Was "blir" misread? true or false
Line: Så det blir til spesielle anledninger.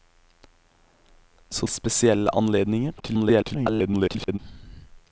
true